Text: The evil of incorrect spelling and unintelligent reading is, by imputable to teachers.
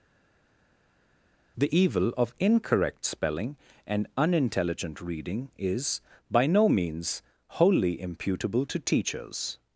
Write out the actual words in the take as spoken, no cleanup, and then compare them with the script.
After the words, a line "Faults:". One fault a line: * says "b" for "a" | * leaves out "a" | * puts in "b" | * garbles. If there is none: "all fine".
The evil of incorrect spelling and unintelligent reading is, by no means, wholly imputable to teachers.
Faults:
* puts in "no means wholly"